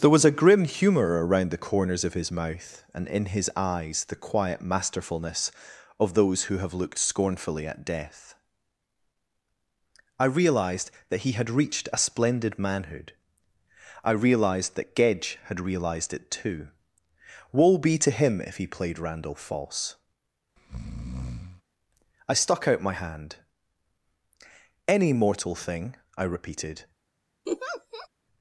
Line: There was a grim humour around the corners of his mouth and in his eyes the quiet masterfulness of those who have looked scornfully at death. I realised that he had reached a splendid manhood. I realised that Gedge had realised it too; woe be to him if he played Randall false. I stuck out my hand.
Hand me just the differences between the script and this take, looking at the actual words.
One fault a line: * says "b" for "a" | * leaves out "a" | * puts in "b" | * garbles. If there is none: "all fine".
* puts in "Any mortal thing I repeated"